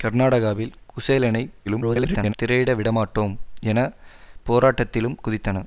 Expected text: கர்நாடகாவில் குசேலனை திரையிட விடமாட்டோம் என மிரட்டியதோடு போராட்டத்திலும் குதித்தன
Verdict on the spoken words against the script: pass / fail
fail